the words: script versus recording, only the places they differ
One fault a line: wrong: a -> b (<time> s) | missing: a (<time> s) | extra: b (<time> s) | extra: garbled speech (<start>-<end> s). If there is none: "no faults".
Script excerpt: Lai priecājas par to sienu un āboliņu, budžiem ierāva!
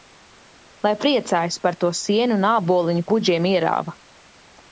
no faults